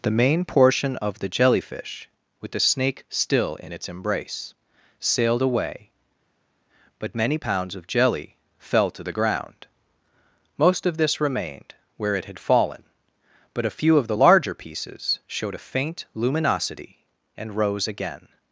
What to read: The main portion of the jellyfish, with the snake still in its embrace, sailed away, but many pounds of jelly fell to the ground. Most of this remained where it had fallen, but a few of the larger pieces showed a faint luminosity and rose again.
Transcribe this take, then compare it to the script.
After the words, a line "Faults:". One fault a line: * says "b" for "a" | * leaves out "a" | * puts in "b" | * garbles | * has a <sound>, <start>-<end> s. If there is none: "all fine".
The main portion of the jellyfish, with the snake still in its embrace, sailed away, but many pounds of jelly fell to the ground. Most of this remained where it had fallen, but a few of the larger pieces showed a faint luminosity and rose again.
Faults:
all fine